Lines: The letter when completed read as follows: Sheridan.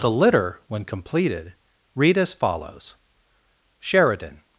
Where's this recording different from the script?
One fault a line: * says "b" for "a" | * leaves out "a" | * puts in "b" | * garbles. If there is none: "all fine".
* says "litter" for "letter"